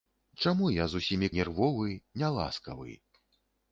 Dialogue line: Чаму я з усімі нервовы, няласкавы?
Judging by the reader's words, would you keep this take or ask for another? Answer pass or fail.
pass